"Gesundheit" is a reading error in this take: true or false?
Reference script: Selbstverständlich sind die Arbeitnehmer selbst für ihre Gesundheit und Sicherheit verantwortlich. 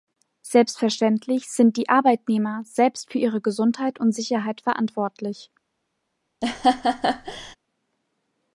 false